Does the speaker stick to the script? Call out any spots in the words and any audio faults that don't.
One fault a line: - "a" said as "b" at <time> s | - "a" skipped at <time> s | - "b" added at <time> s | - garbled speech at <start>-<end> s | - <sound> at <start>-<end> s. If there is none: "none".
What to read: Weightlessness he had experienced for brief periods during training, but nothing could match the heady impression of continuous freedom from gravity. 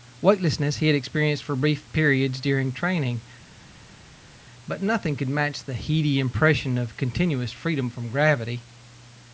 none